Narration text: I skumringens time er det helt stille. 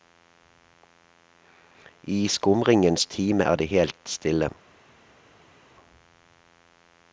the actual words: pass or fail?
pass